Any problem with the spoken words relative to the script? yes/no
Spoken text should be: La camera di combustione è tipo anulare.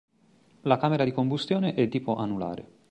no